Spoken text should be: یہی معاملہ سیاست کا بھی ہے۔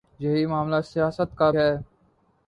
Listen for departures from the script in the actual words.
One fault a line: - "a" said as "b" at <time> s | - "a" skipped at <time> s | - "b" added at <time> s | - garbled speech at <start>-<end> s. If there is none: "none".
- "بھی" skipped at 1.5 s